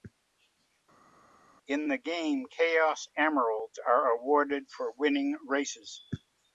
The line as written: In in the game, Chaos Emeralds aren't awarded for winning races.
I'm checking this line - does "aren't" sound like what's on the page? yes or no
no